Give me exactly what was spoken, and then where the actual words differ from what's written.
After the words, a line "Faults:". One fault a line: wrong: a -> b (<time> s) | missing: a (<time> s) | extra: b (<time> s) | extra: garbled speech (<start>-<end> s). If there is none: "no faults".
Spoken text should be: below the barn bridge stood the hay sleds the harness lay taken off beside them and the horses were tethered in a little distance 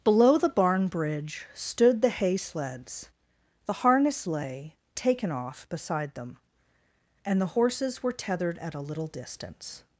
below the barn bridge stood the hay sleds the harness lay taken off beside them and the horses were tethered at a little distance
Faults:
wrong: in -> at (8.6 s)